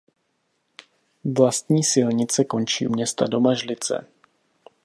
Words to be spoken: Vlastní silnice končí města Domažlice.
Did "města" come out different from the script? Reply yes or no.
no